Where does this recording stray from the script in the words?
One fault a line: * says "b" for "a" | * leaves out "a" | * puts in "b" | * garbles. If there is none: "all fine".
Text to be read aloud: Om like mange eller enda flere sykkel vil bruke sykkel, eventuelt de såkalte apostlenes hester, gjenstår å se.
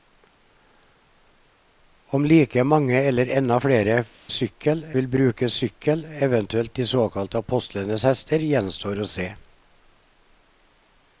all fine